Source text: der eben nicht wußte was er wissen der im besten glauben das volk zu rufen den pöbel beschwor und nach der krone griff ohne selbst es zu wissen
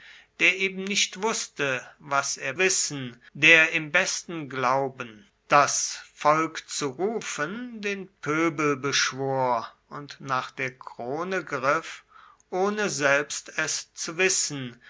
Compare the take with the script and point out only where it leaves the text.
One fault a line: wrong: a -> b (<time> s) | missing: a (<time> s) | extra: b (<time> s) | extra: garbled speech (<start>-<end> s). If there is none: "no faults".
no faults